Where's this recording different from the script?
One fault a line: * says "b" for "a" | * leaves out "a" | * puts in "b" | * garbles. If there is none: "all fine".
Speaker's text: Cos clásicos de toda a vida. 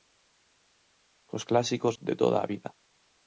all fine